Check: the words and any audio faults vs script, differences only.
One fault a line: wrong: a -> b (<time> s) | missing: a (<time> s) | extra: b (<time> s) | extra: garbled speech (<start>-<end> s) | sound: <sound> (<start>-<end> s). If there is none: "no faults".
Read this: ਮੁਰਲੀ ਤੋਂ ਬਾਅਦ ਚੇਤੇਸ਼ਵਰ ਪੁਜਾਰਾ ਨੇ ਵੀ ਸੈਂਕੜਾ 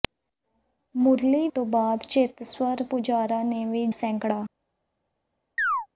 sound: chirp (5.6-5.9 s)